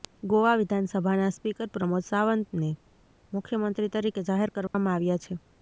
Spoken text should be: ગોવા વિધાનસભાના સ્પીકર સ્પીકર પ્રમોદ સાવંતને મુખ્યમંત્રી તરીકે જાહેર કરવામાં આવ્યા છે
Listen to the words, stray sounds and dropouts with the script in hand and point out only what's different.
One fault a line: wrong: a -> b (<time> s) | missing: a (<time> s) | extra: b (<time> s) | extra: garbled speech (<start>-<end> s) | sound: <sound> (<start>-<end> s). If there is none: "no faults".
missing: સ્પીકર (1.7 s)
sound: dropout (4.7-4.7 s)